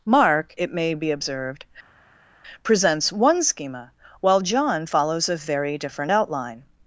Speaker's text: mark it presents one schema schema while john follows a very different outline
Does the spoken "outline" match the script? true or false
true